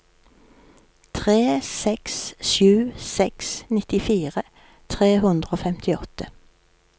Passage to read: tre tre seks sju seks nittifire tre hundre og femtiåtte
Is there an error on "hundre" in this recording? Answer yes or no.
no